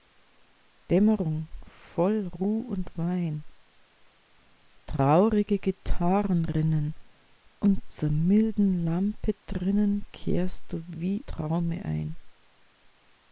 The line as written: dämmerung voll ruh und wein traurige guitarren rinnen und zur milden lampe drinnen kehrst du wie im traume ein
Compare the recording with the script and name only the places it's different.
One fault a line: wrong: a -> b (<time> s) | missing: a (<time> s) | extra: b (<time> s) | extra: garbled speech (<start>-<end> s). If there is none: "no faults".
missing: im (11.3 s)